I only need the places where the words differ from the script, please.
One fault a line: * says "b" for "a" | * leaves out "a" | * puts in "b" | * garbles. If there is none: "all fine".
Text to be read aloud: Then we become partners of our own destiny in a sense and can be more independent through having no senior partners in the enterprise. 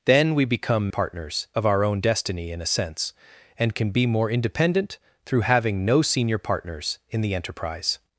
all fine